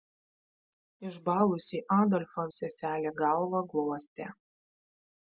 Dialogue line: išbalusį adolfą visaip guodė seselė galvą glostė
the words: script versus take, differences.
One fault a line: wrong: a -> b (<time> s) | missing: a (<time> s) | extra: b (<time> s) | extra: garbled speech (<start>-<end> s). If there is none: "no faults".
missing: visaip guodė (2.5 s)